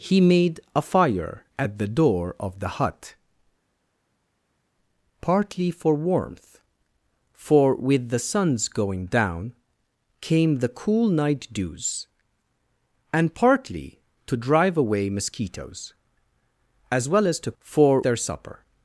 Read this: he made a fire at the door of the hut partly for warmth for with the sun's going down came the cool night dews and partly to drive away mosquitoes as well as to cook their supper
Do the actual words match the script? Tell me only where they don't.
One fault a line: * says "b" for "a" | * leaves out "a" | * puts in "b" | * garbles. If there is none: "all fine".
* says "for" for "cook"